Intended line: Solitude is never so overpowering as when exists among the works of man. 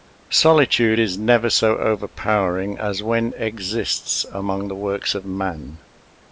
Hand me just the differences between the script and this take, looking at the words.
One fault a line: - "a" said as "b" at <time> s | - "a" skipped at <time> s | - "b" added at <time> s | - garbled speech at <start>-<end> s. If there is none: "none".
none